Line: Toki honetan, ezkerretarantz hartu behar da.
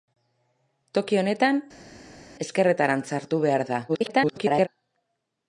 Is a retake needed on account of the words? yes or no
yes